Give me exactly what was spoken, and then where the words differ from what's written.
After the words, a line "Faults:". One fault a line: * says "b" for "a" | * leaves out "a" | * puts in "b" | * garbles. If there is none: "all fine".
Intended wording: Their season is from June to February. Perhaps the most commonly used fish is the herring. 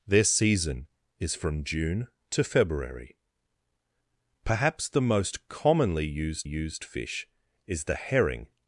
Their season is from June to February. Perhaps the most commonly used used fish is the herring.
Faults:
* puts in "used"